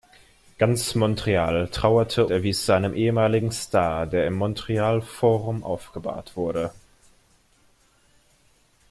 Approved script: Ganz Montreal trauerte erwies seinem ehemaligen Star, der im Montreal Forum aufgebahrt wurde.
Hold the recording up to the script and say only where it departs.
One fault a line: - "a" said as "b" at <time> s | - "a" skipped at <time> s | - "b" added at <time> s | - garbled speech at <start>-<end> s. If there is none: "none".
none